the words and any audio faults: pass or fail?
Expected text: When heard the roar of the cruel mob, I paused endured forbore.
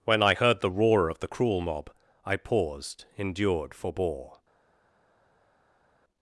fail